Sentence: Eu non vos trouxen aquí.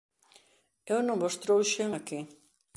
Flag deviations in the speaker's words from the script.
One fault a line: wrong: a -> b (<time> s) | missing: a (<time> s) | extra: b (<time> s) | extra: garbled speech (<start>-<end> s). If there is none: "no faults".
no faults